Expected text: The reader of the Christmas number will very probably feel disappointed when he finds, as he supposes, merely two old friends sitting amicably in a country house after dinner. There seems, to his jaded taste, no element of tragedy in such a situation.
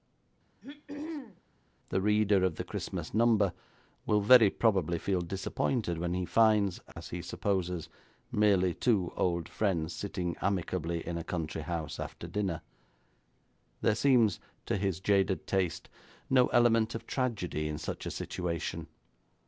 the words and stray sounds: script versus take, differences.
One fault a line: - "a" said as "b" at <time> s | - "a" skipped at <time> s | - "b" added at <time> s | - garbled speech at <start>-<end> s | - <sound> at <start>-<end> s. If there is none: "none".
- throat clearing at 0.6-1.4 s
- dropout at 6.9-7.0 s